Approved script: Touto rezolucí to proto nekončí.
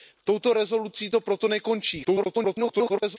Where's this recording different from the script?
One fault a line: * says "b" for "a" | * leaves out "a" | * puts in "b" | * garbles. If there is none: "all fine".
* garbles